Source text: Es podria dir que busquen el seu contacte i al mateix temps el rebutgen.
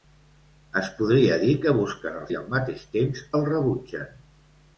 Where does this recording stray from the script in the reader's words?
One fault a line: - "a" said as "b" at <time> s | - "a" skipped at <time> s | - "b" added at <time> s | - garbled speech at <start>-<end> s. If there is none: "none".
- "seu contacte" skipped at 2.2 s